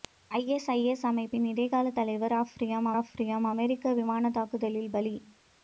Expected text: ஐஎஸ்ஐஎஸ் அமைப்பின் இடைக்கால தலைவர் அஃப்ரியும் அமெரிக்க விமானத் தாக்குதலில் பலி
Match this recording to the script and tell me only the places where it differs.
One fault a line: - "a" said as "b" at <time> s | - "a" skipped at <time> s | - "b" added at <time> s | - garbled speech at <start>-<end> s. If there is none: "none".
- "அஃப்ரியும்" added at 3.0 s